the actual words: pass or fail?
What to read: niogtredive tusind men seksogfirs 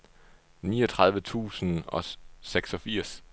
fail